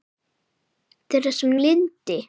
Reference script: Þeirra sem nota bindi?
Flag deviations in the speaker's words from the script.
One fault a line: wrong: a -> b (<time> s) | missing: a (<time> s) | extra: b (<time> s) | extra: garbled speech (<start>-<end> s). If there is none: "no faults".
missing: nota (1.5 s)